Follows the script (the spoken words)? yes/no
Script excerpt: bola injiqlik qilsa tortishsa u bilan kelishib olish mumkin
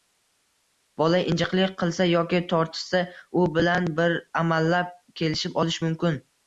no